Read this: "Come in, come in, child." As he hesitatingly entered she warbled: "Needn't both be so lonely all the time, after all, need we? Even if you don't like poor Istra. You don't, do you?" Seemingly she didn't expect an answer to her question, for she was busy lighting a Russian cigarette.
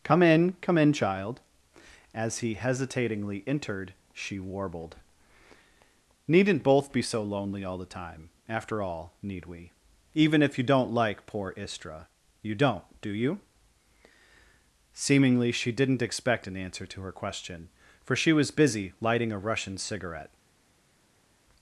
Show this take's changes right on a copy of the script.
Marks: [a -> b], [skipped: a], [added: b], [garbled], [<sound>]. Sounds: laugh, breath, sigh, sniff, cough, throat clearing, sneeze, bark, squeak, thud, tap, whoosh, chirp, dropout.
"Come in, come in, child." As he hesitatingly entered she warbled: "Needn't both be so lonely all the time, after all, need we? Even if you don't like poor Istra. You don't, do you?" Seemingly she didn't expect an answer to her question, for she was busy lighting a Russian cigarette.